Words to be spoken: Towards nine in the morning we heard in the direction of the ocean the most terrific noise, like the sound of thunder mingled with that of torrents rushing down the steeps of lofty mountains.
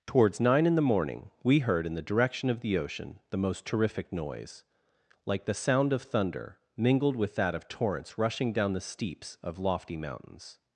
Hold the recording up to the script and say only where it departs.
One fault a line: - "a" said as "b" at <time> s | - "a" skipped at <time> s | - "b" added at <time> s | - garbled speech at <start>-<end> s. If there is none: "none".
none